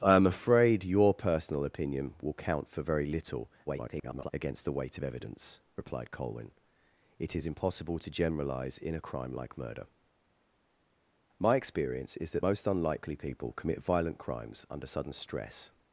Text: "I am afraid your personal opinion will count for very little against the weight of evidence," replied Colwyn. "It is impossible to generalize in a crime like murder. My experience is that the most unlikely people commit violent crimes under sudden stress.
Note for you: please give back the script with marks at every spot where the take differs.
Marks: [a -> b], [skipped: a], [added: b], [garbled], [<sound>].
"I am afraid your personal opinion will count for very little [garbled] against the weight of evidence," replied Colwyn. "It is impossible to generalize in a crime like murder. My experience is that [skipped: the] most unlikely people commit violent crimes under sudden stress.